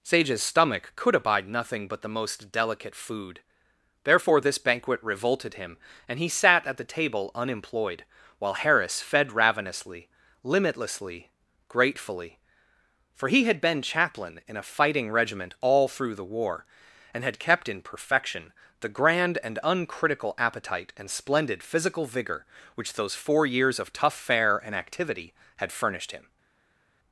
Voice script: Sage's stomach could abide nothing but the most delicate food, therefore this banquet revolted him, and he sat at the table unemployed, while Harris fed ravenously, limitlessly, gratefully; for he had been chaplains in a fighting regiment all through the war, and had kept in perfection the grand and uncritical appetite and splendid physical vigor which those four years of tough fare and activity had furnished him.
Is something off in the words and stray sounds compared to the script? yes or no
yes